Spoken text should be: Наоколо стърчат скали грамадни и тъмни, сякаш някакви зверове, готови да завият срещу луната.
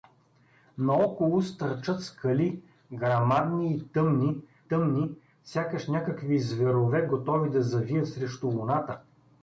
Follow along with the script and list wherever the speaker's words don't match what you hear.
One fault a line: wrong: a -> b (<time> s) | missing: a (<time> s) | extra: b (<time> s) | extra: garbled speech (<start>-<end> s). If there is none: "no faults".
extra: тъмни (4.6 s)